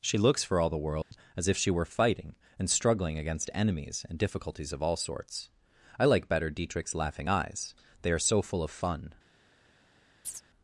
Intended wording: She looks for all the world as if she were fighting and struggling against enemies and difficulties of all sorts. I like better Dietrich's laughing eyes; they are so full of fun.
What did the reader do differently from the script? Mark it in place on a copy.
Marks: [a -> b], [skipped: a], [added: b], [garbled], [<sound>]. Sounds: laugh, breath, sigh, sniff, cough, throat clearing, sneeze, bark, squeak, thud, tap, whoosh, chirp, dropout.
She looks for all the world [dropout] as if she were fighting and struggling against enemies and difficulties of all sorts. I like better Dietrich's laughing eyes; they are so full of fun. [chirp]